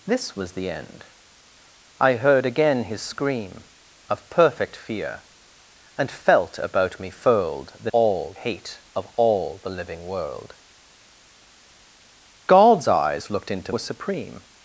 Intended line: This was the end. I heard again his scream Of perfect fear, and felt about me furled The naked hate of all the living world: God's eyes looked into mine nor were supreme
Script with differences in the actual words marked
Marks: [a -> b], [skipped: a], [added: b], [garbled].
This was the end. I heard again his scream Of perfect fear, and felt about me furled The [naked -> all] hate of all the living world: God's eyes looked into [skipped: mine nor] were supreme